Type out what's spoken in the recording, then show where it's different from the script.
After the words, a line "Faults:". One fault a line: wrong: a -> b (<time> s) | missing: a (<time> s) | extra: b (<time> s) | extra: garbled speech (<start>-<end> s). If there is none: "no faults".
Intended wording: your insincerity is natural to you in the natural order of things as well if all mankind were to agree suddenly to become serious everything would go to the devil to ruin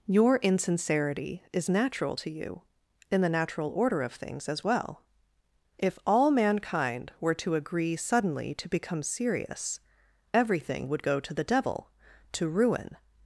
your insincerity is natural to you in the natural order of things as well if all mankind were to agree suddenly to become serious everything would go to the devil to ruin
Faults:
no faults